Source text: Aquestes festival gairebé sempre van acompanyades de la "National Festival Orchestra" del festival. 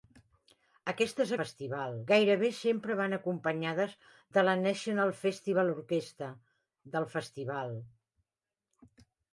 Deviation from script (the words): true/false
false